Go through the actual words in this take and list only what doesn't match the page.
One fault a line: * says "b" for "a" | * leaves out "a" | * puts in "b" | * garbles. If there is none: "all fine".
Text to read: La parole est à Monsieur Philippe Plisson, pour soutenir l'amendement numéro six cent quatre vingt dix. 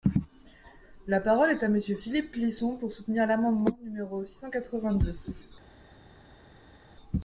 all fine